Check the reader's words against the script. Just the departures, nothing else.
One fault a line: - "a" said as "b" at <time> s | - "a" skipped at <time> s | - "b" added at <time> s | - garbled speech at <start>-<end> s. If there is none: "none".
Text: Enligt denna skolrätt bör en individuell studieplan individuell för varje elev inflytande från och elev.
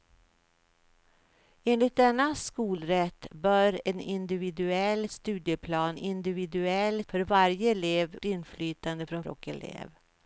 none